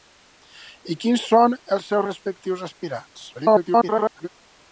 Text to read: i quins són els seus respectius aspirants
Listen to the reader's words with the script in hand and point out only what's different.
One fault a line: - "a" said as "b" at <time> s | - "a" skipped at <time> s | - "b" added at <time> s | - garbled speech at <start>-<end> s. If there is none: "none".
- garbled speech at 3.3-4.3 s